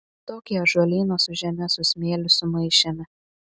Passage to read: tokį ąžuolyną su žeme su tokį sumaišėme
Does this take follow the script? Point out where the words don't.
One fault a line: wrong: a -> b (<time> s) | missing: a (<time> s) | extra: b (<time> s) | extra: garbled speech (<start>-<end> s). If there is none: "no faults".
wrong: tokį -> smėliu (1.9 s)